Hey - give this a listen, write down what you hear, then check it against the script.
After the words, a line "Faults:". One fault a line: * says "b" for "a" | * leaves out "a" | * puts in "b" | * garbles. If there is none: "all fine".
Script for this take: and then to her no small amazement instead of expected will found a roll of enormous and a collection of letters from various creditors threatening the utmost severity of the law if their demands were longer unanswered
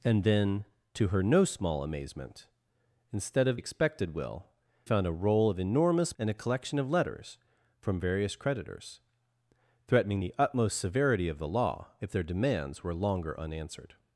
and then to her no small amazement instead of expected will found a roll of enormous and a collection of letters from various creditors threatening the utmost severity of the law if their demands were longer unanswered
Faults:
all fine